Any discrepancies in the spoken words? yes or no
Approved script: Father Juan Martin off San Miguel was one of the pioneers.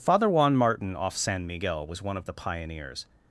no